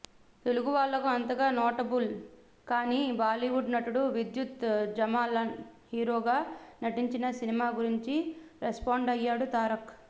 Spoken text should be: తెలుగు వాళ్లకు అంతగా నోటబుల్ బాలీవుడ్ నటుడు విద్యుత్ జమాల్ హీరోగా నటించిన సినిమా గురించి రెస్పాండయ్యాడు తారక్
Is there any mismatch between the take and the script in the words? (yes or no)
yes